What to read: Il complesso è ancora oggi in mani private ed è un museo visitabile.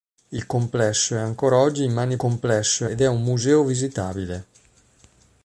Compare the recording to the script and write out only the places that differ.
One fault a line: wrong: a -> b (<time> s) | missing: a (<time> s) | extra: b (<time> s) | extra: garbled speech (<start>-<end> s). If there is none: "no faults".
wrong: private -> complesso (2.2 s)